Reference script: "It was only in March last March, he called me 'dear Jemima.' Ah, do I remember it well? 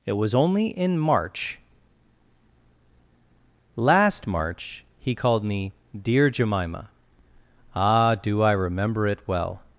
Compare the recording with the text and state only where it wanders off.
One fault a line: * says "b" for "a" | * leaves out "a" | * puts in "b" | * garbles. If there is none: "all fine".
all fine